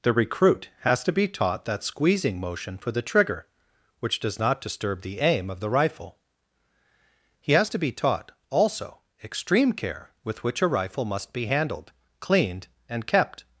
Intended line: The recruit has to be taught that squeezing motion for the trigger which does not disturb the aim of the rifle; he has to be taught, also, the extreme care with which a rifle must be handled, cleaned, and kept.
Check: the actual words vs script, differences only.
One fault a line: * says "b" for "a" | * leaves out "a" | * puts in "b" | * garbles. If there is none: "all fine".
* leaves out "the"